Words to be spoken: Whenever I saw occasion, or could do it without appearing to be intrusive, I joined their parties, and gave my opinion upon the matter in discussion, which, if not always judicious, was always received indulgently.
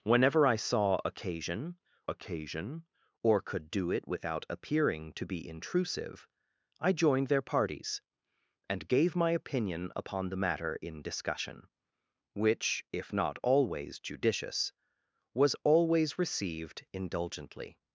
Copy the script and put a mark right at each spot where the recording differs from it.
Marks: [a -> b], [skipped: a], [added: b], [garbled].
Whenever I saw occasion, [added: occasion] or could do it without appearing to be intrusive, I joined their parties, and gave my opinion upon the matter in discussion, which, if not always judicious, was always received indulgently.